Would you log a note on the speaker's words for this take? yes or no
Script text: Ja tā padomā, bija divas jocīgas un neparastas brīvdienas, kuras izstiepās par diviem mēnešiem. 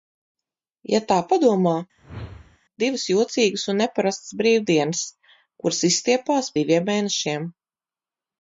yes